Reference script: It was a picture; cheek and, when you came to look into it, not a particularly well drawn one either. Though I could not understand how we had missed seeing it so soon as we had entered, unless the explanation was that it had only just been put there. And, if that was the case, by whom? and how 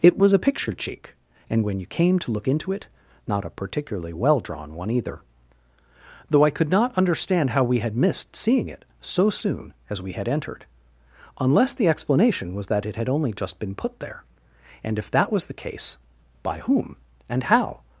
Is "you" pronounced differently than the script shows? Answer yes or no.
no